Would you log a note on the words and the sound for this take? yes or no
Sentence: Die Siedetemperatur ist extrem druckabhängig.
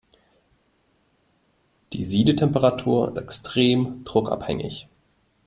yes